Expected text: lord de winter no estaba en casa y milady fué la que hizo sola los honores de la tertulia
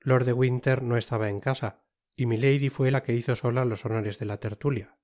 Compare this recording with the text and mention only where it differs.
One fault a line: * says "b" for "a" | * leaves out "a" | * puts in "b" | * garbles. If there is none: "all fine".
all fine